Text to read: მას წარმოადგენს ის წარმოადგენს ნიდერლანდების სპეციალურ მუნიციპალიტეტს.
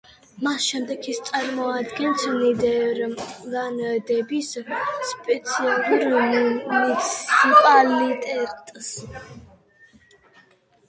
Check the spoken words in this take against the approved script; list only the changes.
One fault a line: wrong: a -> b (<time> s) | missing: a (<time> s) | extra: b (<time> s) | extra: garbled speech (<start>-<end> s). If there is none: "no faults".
wrong: წარმოადგენს -> შემდეგ (0.7 s)